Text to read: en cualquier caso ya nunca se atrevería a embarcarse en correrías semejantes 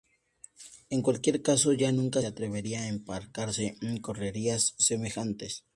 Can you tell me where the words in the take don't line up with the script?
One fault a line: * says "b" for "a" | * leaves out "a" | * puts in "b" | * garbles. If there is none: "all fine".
* leaves out "se"